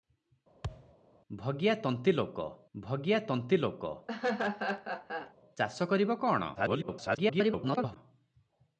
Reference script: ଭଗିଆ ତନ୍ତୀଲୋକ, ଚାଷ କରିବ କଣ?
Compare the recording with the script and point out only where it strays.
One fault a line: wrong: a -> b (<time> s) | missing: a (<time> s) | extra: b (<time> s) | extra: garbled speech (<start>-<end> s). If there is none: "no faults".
extra: ଭଗିଆ ତନ୍ତୀଲୋକ (2.8 s)
extra: garbled speech (6.5-8.0 s)